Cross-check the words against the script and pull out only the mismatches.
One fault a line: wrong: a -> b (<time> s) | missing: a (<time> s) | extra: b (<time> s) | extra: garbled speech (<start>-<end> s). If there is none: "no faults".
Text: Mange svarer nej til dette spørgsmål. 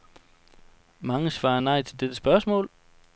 no faults